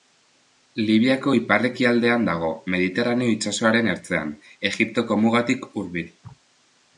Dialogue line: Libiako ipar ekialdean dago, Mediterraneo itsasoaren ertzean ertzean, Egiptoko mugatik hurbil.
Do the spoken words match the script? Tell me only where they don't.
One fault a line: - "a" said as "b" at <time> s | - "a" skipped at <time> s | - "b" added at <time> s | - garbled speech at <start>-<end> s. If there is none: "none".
- "ertzean" skipped at 4.3 s